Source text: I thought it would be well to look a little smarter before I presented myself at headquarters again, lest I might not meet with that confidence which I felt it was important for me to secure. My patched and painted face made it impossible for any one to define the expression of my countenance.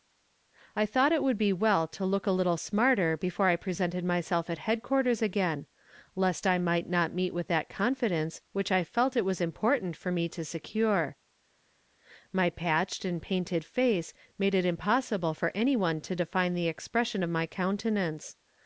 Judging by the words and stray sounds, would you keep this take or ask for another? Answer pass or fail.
pass